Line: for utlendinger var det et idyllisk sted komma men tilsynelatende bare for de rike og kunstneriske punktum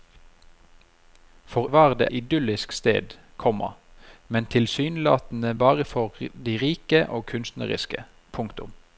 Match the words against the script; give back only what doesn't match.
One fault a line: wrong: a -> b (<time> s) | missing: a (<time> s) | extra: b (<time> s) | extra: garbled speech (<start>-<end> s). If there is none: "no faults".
missing: utlendinger (1.7 s)
missing: et (2.1 s)